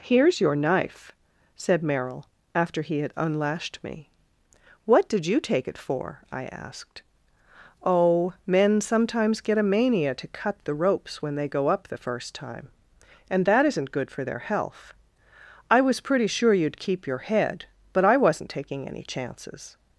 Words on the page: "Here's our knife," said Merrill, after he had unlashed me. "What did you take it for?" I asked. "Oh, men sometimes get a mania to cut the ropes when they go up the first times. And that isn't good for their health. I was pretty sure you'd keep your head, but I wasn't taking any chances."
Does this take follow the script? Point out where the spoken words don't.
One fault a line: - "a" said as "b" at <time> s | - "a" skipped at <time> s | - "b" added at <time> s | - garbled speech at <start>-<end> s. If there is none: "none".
- "our" said as "your" at 0.4 s
- "times" said as "time" at 12.3 s